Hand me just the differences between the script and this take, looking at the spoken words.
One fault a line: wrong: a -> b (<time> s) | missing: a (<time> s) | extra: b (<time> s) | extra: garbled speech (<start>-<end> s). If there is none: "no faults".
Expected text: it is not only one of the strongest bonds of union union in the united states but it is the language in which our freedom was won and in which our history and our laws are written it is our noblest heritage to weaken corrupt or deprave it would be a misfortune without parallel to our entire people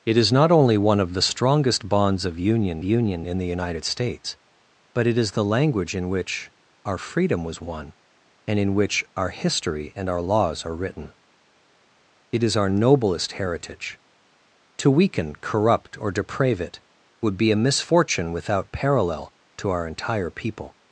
no faults